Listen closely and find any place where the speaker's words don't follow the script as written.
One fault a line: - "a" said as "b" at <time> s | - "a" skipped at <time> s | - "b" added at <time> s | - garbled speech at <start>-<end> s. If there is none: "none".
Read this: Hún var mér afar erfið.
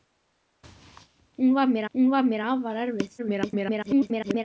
- "hún var mér" added at 1.9 s
- garbled speech at 3.2-4.4 s